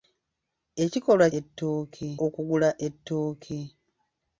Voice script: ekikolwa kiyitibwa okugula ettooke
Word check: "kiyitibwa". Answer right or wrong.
wrong